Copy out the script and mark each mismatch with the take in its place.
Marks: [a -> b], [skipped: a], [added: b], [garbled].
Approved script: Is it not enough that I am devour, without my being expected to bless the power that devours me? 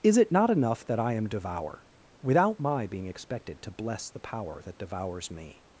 Is it not enough that I am devour, without my being expected to bless the power that devours me?